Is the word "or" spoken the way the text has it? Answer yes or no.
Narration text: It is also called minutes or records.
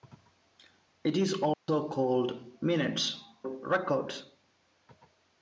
no